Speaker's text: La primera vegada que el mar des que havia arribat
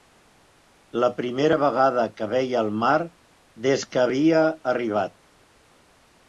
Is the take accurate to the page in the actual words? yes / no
no